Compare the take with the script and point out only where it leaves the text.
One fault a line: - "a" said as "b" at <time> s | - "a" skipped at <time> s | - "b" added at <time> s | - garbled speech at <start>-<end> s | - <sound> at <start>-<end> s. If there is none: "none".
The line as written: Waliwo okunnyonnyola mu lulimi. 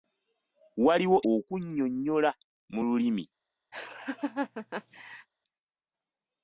- laugh at 3.7-5.3 s